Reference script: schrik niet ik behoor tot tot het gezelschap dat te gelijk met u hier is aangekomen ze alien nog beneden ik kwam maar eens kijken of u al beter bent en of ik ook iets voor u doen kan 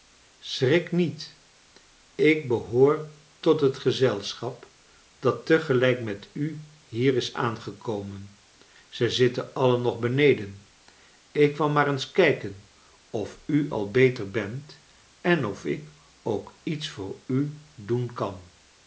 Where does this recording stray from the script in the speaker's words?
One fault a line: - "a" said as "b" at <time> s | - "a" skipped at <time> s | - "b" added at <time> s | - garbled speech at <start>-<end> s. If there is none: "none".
- "tot" skipped at 3.6 s
- "zitten" added at 9.1 s